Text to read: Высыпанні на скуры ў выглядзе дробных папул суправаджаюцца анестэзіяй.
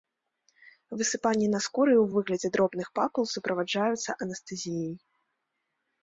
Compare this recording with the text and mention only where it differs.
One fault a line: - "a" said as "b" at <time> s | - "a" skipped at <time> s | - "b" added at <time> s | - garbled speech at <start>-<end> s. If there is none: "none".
none